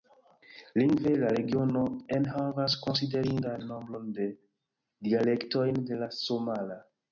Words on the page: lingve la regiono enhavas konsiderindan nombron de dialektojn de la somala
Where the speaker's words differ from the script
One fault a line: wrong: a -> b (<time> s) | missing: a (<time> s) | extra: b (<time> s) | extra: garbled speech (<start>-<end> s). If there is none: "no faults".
no faults